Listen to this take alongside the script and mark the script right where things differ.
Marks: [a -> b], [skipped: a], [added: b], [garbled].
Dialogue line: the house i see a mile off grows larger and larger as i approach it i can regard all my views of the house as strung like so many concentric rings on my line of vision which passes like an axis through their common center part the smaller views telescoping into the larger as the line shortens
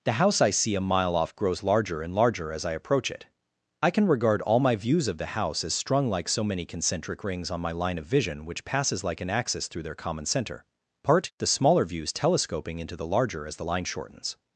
the house i see a mile off grows larger and larger as i approach it i can regard all my views of the house as strung like so many concentric rings on my line of vision which passes like an axis through their common center part the smaller views telescoping into the larger as the line shortens